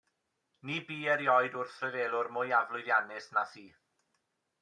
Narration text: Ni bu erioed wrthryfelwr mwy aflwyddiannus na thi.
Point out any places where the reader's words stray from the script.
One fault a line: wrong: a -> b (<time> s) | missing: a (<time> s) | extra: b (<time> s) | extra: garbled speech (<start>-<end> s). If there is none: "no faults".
no faults